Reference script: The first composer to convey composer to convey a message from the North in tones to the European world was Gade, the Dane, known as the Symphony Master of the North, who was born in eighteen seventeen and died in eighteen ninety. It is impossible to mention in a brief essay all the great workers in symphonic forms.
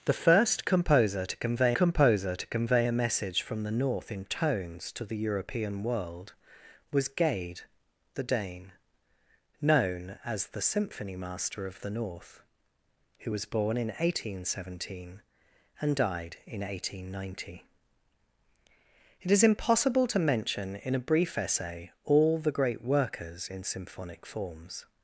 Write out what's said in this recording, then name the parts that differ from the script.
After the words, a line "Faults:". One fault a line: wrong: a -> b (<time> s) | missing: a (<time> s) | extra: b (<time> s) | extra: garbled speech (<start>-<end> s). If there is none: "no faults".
The first composer to convey composer to convey a message from the North in tones to the European world was Gade, the Dane, known as the Symphony Master of the North, who was born in eighteen seventeen and died in eighteen ninety. It is impossible to mention in a brief essay all the great workers in symphonic forms.
Faults:
no faults